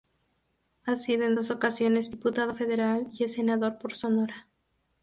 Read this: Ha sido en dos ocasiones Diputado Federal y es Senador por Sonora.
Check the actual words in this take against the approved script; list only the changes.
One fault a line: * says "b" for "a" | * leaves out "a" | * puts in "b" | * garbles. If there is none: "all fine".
all fine